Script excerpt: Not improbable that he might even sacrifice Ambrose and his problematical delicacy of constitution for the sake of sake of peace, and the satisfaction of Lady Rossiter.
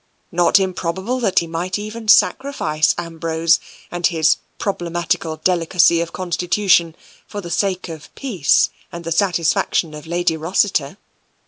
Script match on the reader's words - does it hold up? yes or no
no